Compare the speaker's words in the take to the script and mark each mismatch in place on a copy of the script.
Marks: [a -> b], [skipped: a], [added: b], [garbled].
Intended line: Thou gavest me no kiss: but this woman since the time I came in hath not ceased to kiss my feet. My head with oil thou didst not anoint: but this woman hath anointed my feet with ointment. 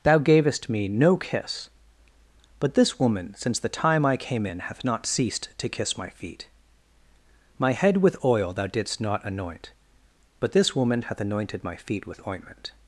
Thou gavest me no kiss: but this woman since the time I came in hath not ceased to kiss my feet. My head with oil thou didst not anoint: but this woman hath anointed my feet with ointment.